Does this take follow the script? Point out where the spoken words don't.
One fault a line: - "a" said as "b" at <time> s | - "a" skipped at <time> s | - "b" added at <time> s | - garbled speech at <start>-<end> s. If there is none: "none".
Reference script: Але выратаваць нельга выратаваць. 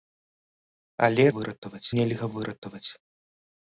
none